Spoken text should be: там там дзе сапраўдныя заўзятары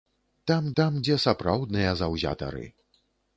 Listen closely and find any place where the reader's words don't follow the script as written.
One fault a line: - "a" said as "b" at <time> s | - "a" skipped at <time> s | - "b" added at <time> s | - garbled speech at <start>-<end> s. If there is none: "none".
none